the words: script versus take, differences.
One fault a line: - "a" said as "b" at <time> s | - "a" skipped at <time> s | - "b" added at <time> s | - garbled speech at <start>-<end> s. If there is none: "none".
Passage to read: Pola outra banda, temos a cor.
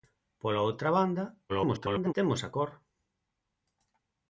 - garbled speech at 1.5-2.1 s